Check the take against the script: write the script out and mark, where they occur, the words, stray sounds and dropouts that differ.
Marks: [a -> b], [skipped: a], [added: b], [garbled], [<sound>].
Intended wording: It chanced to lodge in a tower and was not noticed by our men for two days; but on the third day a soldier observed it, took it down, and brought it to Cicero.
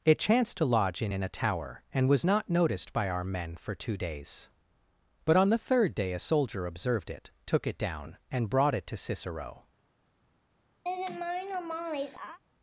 It chanced to lodge in [added: in] a tower and was not noticed by our men for two days; but on the third day a soldier observed it, took it down, and brought it to Cicero. [laugh]